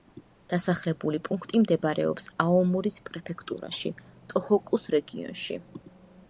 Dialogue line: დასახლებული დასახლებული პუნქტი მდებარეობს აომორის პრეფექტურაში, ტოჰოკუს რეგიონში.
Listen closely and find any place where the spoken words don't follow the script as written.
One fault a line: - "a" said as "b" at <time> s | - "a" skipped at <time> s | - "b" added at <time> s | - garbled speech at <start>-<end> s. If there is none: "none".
- "დასახლებული" skipped at 1.2 s